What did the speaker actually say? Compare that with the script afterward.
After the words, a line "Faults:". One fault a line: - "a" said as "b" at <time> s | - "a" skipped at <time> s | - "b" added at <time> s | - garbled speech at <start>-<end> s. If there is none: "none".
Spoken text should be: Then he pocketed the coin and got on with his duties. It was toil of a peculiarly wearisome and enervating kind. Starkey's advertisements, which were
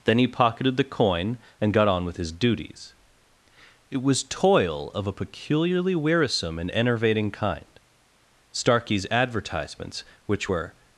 Then he pocketed the coin and got on with his duties. It was toil of a peculiarly wearisome and enervating kind. Starkey's advertisements, which were
Faults:
none